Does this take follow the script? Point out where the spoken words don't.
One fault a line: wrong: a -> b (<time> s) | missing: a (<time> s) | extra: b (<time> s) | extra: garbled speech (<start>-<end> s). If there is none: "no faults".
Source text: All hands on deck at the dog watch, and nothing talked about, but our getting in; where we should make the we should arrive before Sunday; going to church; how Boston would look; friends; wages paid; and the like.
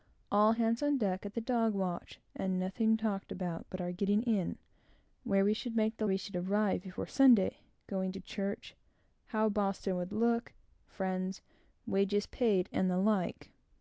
no faults